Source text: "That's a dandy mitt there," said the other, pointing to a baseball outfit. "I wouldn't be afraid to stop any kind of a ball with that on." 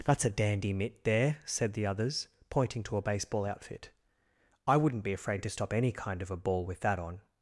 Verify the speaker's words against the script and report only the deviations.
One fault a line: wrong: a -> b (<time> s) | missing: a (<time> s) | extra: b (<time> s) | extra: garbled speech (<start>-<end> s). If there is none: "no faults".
wrong: other -> others (1.9 s)